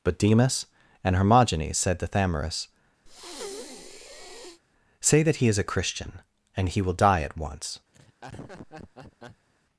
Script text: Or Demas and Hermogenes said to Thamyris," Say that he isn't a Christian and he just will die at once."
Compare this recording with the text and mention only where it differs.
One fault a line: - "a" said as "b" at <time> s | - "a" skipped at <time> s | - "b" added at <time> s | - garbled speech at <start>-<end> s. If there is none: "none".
- "Or" said as "But" at 0.0 s
- "isn't" said as "is" at 5.5 s
- "just" skipped at 6.8 s